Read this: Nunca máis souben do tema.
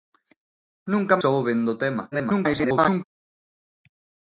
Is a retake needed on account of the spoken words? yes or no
yes